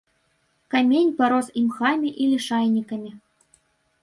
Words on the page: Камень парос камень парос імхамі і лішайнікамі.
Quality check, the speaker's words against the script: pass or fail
fail